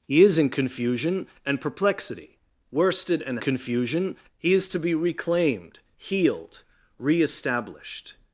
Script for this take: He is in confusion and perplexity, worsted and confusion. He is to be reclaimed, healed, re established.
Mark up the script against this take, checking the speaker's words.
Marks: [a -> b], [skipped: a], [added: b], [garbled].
He is in confusion and perplexity, worsted and confusion. He is to be reclaimed, healed, re established.